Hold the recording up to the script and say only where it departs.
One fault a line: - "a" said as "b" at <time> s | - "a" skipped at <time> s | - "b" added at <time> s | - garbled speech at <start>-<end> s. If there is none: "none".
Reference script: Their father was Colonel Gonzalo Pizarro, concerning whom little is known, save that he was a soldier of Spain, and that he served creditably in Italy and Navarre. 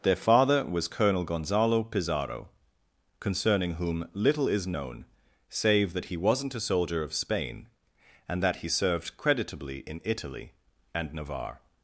- "was" said as "wasn't" at 6.2 s